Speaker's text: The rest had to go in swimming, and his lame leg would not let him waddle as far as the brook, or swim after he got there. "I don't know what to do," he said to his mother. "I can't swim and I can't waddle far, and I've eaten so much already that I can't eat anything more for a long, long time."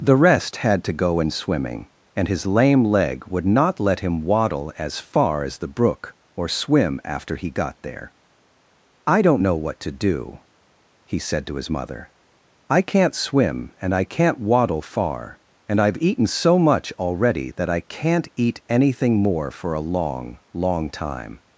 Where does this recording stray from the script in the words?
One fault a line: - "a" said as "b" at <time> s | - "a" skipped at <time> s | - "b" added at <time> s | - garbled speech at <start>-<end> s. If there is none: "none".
none